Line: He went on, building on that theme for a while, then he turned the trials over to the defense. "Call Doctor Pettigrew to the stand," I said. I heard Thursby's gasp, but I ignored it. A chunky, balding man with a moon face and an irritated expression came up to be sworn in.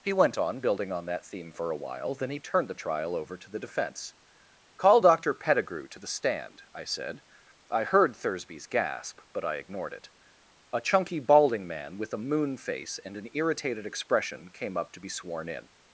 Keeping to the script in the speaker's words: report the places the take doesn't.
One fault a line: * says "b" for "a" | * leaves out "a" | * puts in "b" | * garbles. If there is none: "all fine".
* says "trial" for "trials"